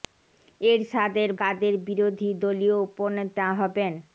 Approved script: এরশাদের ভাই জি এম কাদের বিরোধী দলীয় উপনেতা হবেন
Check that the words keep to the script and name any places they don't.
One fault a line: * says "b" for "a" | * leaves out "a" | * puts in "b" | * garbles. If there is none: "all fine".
* leaves out "ভাই জি এম"